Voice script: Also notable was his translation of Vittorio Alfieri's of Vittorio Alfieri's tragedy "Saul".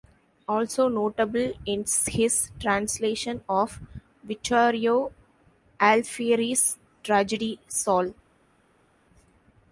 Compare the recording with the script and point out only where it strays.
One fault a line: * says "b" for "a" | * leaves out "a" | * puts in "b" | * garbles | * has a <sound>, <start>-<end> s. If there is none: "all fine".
* says "is" for "was"
* leaves out "of Vittorio Alfieri's"